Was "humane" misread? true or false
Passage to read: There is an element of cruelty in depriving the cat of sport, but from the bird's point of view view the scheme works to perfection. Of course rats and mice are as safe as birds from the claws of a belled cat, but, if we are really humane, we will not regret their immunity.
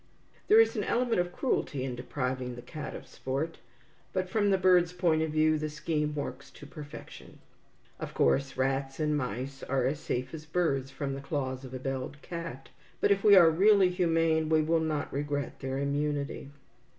false